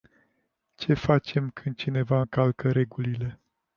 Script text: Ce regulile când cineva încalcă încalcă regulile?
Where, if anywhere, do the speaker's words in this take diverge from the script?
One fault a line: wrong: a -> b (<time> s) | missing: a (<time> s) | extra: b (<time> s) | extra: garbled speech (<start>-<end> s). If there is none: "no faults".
wrong: regulile -> facem (0.9 s)
missing: încalcă (2.7 s)